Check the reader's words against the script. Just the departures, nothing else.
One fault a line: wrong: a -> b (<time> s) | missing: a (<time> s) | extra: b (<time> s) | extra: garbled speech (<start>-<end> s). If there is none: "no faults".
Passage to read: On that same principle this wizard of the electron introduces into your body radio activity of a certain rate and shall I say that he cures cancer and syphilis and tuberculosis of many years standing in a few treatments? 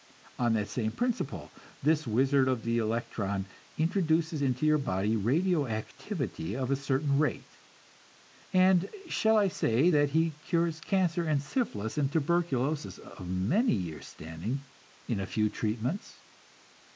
no faults